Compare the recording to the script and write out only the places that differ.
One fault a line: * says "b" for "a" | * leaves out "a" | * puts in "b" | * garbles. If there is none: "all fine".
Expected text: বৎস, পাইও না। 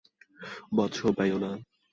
all fine